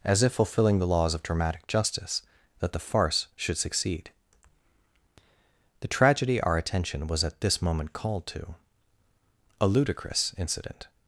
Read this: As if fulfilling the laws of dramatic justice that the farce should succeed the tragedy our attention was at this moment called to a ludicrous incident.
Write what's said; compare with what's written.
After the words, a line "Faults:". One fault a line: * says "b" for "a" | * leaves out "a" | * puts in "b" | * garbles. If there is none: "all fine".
As if fulfilling the laws of dramatic justice that the farce should succeed the tragedy our attention was at this moment called to a ludicrous incident.
Faults:
all fine